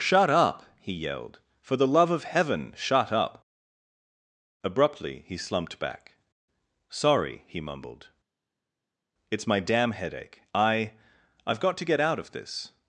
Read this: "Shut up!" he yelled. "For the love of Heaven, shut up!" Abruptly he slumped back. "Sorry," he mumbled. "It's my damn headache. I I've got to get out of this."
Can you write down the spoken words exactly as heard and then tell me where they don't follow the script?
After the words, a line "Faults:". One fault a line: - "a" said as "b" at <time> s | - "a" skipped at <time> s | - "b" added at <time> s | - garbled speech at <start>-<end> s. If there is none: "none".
"Shut up!" he yelled. "For the love of Heaven, shut up!" Abruptly he slumped back. "Sorry," he mumbled. "It's my damn headache. I I've got to get out of this."
Faults:
none